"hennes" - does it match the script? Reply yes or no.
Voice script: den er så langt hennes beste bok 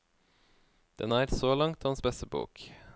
no